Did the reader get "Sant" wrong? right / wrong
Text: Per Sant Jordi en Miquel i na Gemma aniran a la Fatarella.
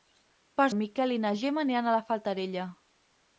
wrong